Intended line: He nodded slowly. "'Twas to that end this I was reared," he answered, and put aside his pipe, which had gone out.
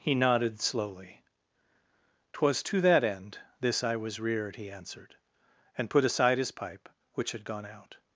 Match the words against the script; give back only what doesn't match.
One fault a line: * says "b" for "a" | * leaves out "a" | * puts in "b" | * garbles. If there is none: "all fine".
all fine